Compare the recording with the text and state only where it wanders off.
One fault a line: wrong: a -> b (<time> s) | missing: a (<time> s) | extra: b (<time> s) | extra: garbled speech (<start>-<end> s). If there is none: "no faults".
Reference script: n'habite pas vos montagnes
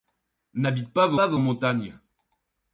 extra: pas vos (1.1 s)